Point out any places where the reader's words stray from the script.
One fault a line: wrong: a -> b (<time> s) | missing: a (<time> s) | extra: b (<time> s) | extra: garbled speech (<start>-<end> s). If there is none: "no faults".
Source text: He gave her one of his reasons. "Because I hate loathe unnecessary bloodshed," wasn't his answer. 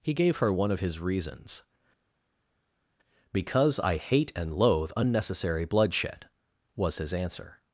extra: and (4.3 s)
wrong: wasn't -> was (6.7 s)